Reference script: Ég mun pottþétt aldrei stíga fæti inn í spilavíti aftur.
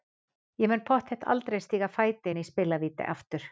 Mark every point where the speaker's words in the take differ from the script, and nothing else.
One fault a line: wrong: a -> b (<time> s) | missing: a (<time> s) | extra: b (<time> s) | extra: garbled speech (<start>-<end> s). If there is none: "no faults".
no faults